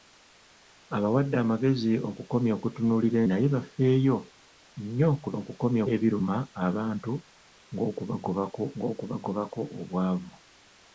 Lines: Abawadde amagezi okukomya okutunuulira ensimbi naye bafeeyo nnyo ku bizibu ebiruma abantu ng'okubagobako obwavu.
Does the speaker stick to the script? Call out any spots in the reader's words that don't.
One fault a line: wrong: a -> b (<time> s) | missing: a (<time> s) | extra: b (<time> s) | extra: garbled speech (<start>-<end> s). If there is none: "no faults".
missing: ensimbi (3.2 s)
wrong: bizibu -> okukomya (5.4 s)
extra: ng'okubagobako (8.8 s)